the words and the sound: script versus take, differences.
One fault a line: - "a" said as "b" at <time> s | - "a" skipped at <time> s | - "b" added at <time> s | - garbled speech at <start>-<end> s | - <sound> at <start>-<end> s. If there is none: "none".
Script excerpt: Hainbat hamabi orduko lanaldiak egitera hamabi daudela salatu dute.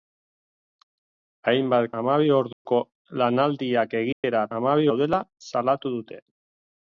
- dropout at 2.5-2.7 s
- dropout at 4.1-4.2 s